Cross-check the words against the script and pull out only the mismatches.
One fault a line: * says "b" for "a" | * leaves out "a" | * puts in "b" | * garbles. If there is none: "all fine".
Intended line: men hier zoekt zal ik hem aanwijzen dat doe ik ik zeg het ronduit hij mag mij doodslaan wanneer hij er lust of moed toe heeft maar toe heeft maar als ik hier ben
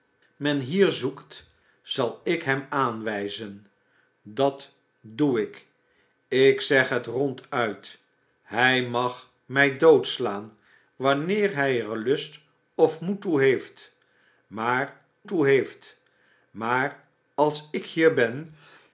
all fine